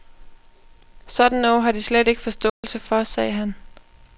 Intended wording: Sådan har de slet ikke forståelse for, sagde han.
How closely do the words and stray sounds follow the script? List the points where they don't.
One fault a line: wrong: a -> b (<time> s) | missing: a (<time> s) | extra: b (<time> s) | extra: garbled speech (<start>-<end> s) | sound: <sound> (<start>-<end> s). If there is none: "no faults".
extra: noget (1.4 s)
sound: dropout (2.5-2.6 s)